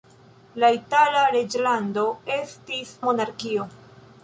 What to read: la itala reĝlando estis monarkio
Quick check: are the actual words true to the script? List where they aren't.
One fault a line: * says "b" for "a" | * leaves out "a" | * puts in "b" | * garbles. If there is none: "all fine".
all fine